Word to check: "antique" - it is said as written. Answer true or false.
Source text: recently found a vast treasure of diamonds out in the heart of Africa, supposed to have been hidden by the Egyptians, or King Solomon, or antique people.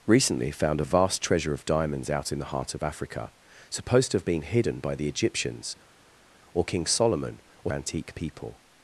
true